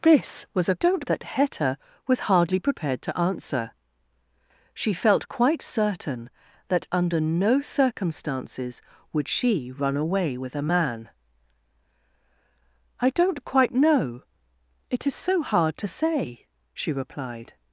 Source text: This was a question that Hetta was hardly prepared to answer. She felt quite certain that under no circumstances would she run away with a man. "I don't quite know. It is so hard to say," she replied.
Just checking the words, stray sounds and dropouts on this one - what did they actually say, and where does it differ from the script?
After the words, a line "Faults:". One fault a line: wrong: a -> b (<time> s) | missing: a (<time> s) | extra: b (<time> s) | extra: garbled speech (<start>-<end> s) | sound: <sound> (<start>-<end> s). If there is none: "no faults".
This was a don't that Hetta was hardly prepared to answer. She felt quite certain that under no circumstances would she run away with a man. "I don't quite know. It is so hard to say," she replied.
Faults:
wrong: question -> don't (0.8 s)